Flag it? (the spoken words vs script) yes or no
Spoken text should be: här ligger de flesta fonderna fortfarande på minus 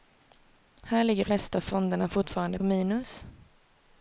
yes